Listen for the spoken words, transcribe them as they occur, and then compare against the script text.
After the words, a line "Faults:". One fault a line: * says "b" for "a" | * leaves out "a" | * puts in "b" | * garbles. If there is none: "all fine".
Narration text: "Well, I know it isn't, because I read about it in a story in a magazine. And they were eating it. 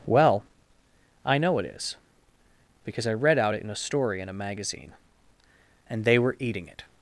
"Well, I know it is, because I read out it in a story in a magazine. And they were eating it.
Faults:
* says "is" for "isn't"
* says "out" for "about"